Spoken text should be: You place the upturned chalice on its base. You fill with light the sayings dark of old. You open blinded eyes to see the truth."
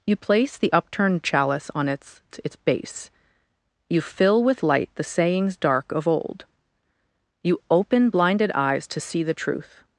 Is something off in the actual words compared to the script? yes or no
yes